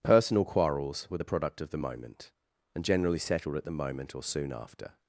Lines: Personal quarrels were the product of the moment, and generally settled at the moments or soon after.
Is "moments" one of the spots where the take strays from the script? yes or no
yes